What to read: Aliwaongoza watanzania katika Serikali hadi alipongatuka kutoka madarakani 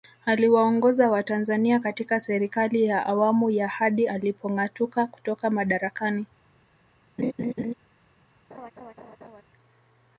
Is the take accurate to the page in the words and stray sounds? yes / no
no